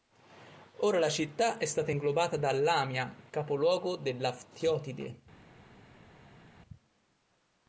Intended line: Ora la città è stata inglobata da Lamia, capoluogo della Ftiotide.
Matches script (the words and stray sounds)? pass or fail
pass